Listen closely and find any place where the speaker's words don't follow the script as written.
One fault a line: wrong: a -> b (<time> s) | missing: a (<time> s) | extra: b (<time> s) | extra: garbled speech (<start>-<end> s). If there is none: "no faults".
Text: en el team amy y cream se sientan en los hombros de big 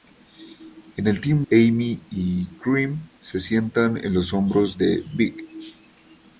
no faults